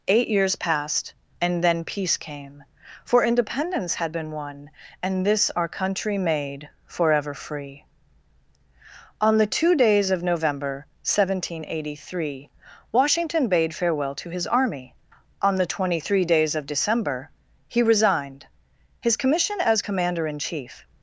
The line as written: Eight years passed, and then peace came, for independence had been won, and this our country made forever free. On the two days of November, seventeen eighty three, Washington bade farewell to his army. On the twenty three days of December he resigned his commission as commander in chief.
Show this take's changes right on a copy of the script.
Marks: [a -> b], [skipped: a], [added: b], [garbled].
Eight years passed, and then peace came, for independence had been won, and this our country made forever free. On the two days of November, seventeen eighty three, Washington bade farewell to his army. On the twenty three days of December he resigned his commission as commander in chief.